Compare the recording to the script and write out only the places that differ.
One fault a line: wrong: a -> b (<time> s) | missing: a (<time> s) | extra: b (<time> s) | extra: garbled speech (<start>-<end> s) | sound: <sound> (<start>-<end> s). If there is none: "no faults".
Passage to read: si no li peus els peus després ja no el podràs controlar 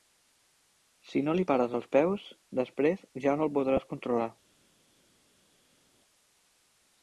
wrong: peus -> pares (1.5 s)